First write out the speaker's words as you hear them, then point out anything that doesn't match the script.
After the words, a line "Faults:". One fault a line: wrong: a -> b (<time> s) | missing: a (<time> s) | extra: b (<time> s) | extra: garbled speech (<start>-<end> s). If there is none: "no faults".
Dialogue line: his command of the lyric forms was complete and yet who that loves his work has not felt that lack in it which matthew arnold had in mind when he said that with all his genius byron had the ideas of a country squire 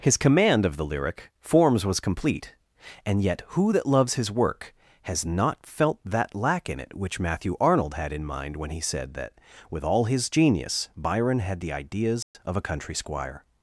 his command of the lyric forms was complete and yet who that loves his work has not felt that lack in it which matthew arnold had in mind when he said that with all his genius byron had the ideas of a country squire
Faults:
no faults